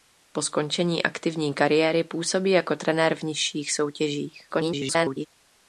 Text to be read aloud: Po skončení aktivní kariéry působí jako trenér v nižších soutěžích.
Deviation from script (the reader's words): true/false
true